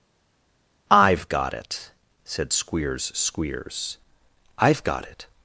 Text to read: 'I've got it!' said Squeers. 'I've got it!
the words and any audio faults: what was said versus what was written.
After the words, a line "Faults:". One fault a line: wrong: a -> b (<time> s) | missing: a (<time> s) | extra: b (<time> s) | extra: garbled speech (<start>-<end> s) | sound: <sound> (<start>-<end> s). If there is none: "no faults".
'I've got it!' said Squeers Squeers. 'I've got it!
Faults:
extra: Squeers (3.1 s)